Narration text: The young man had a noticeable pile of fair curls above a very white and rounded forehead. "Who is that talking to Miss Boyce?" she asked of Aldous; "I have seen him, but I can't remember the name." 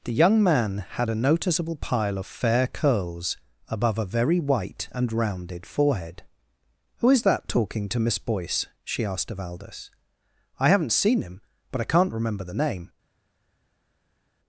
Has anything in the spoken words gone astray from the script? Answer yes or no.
yes